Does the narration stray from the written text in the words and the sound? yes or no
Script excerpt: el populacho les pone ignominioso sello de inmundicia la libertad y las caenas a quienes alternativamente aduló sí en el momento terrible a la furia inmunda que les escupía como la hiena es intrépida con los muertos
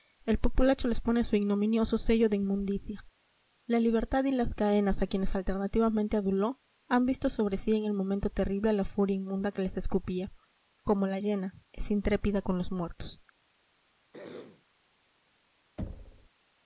yes